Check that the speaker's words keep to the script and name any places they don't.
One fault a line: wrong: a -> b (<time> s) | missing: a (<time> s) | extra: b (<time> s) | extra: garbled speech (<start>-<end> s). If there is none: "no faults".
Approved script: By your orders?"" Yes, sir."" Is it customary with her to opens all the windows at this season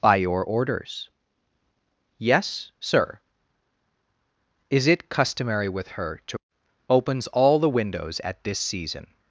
no faults